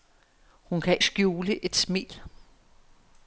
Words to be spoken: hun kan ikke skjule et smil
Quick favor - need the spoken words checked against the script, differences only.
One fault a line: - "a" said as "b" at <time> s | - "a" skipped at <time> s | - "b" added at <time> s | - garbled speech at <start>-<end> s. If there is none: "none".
- "ikke" skipped at 1.0 s